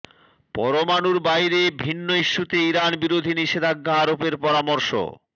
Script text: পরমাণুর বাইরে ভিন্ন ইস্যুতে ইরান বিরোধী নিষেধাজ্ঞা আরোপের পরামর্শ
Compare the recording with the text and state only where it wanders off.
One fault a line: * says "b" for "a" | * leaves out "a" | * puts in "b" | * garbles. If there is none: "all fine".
all fine